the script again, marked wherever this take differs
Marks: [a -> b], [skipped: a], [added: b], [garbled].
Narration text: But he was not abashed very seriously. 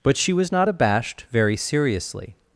But [he -> she] was not abashed very seriously.